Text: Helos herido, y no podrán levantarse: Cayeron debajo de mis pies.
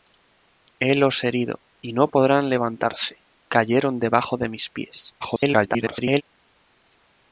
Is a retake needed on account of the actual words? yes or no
yes